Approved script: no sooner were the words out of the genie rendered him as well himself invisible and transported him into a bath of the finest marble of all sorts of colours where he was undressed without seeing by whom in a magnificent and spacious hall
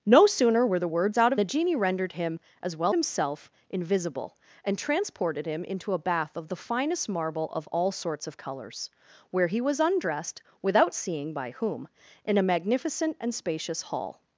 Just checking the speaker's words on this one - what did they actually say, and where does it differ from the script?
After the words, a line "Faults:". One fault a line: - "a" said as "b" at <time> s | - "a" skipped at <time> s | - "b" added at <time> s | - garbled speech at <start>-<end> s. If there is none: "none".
no sooner were the words out of the genie rendered him as well himself invisible and transported him into a bath of the finest marble of all sorts of colours where he was undressed without seeing by whom in a magnificent and spacious hall
Faults:
none